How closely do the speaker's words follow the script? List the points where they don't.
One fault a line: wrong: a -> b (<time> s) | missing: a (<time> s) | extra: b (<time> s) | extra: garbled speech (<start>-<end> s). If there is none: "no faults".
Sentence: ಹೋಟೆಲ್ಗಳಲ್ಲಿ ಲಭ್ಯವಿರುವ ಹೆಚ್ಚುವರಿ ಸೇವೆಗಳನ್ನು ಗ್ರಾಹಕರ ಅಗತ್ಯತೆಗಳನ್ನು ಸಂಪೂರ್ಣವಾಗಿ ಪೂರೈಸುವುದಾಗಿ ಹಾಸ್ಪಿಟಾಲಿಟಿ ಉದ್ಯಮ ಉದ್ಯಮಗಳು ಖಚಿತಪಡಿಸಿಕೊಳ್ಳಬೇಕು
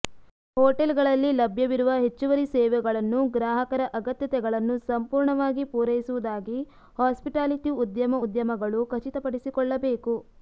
no faults